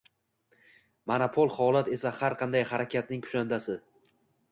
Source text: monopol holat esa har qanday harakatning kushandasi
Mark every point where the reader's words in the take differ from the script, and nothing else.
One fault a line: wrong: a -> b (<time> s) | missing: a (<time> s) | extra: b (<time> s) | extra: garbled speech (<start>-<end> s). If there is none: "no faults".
no faults